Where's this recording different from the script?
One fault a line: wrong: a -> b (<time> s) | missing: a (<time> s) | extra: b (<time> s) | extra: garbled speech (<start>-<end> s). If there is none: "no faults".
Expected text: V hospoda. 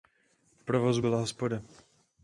extra: provozu byla (0.6 s)